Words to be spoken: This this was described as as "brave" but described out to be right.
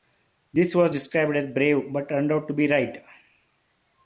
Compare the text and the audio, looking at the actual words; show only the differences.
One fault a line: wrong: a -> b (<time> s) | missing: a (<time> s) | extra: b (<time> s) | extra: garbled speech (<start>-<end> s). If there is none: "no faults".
missing: this (0.7 s)
missing: as (1.5 s)
wrong: described -> turned (2.1 s)